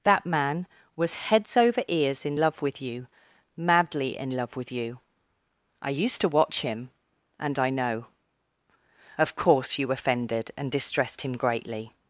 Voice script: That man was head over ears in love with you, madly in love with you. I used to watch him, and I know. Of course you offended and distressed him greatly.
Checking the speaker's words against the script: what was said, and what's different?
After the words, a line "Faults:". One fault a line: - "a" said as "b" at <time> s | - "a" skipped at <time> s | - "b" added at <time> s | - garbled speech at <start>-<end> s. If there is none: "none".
That man was heads over ears in love with you, madly in love with you. I used to watch him, and I know. Of course you offended and distressed him greatly.
Faults:
- "head" said as "heads" at 1.1 s